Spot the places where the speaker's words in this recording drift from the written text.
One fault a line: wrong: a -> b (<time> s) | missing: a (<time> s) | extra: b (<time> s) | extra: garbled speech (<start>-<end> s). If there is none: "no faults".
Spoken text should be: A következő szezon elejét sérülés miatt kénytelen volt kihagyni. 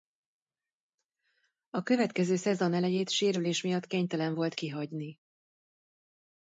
no faults